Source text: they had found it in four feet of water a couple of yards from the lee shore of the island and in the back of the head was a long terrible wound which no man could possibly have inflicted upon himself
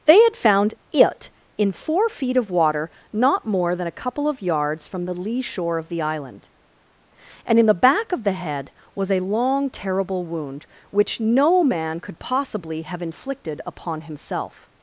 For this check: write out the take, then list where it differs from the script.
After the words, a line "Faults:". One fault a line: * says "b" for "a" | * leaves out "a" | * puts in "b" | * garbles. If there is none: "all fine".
they had found it in four feet of water not more than a couple of yards from the lee shore of the island and in the back of the head was a long terrible wound which no man could possibly have inflicted upon himself
Faults:
* puts in "not more than"